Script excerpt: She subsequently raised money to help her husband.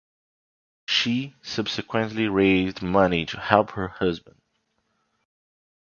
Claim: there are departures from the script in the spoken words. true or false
false